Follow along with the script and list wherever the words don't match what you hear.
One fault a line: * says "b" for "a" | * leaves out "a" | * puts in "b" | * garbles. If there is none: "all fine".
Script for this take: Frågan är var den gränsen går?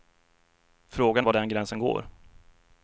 * leaves out "är"